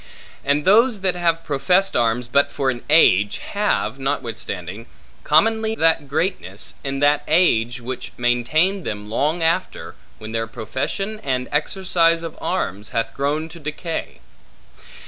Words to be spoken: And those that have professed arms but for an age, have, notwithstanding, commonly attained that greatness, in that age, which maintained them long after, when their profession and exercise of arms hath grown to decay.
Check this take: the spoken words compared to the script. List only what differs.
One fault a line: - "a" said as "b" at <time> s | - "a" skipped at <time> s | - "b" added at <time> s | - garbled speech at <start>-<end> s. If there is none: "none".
- "attained" skipped at 5.8 s